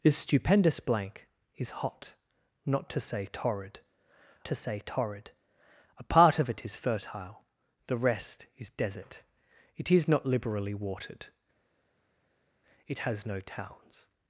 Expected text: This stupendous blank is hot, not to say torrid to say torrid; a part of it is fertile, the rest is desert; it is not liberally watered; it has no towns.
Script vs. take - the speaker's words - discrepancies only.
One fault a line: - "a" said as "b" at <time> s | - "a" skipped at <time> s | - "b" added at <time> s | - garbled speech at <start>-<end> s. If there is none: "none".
none